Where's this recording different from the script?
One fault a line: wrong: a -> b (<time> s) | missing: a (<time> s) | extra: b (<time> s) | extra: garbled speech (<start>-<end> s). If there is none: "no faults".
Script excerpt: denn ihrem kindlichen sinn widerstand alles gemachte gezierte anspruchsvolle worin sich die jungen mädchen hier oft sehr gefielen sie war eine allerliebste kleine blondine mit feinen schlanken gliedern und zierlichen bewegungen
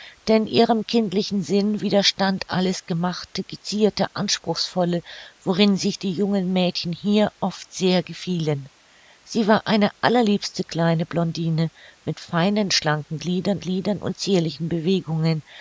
extra: gliedern (13.6 s)